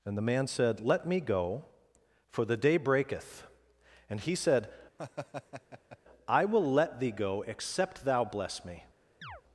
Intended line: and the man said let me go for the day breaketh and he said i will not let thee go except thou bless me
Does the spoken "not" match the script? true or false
false